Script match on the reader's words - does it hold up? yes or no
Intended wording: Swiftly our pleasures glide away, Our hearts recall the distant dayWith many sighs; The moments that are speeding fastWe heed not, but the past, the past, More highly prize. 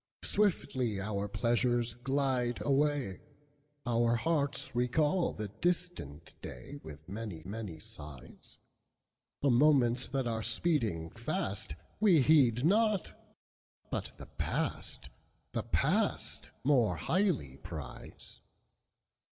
no